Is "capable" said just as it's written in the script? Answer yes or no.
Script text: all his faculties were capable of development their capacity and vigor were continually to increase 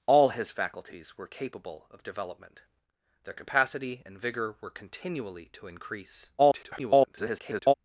yes